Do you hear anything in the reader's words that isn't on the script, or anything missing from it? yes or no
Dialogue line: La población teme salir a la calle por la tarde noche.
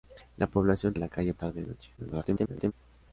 yes